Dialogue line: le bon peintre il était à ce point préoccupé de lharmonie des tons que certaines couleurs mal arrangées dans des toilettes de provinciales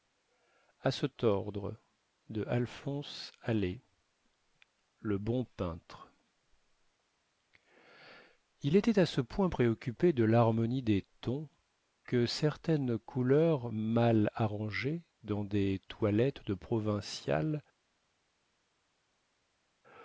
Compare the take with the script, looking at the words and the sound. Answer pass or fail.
pass